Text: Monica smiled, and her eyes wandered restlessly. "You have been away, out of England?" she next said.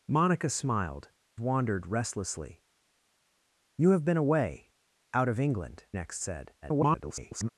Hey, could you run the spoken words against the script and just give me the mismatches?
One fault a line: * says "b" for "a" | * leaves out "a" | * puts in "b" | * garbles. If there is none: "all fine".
* leaves out "and her eyes"
* leaves out "she"
* garbles